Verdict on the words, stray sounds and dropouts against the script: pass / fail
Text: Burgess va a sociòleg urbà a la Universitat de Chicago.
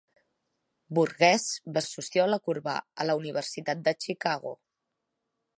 pass